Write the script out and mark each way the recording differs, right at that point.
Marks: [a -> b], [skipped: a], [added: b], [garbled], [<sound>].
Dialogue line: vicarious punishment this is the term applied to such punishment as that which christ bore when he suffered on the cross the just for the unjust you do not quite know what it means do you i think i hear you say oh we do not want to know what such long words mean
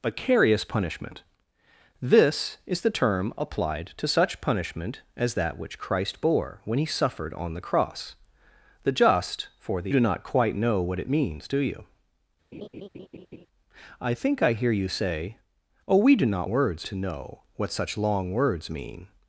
vicarious punishment this is the term applied to such punishment as that which christ bore when he suffered on the cross the just for the [skipped: unjust you] do not quite know what it means do you [laugh] i think i hear you say oh we do not [want -> words] to know what such long words mean